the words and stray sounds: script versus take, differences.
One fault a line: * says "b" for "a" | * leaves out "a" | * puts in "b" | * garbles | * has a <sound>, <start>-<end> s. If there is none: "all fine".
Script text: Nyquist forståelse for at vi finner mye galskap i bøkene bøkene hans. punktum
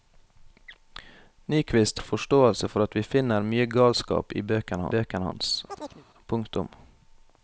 * has a chirp, 5.7-6.1 s